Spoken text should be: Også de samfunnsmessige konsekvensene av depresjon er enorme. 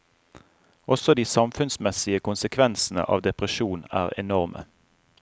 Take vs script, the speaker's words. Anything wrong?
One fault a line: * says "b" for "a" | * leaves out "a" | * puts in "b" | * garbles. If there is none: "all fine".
all fine